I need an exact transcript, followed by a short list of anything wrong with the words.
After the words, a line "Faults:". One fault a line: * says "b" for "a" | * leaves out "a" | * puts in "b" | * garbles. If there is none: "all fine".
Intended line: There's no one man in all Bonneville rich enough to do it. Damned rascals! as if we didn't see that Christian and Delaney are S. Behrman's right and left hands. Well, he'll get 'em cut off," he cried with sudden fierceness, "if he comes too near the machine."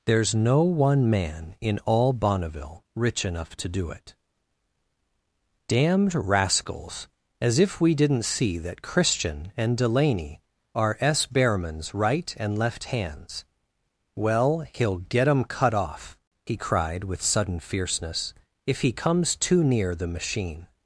There's no one man in all Bonneville rich enough to do it. Damned rascals! as if we didn't see that Christian and Delaney are S. Behrman's right and left hands. Well, he'll get 'em cut off," he cried with sudden fierceness, "if he comes too near the machine."
Faults:
all fine